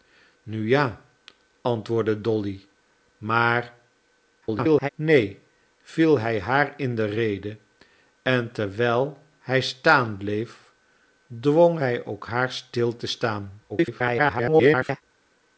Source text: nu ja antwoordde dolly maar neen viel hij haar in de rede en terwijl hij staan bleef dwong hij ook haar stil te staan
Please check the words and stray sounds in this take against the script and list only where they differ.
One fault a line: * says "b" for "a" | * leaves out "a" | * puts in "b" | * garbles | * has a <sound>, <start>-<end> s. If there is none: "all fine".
* garbles
* garbles